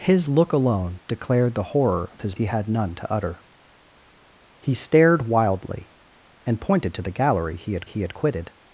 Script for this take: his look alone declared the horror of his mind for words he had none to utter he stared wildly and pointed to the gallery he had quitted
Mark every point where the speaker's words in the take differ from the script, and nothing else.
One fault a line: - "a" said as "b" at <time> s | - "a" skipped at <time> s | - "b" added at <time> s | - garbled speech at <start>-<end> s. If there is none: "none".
- "mind for words" skipped at 2.4 s
- "he had" added at 7.8 s